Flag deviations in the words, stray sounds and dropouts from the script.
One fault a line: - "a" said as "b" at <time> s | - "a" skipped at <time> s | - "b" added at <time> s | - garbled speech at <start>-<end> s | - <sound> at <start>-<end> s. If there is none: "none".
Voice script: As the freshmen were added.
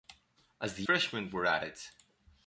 none